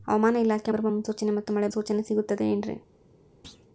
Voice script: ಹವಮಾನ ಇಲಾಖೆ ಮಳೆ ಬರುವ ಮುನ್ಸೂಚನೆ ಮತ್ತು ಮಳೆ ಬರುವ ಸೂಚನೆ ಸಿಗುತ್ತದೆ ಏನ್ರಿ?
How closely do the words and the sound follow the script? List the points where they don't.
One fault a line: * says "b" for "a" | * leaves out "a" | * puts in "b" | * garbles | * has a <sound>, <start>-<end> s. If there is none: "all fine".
* leaves out "ಮಳೆ"
* leaves out "ಬರುವ"
* has a thud, 3.4-3.7 s